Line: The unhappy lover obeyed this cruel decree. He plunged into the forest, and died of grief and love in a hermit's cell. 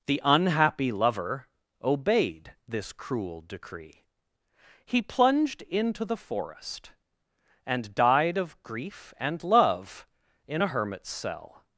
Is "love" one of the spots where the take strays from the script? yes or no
no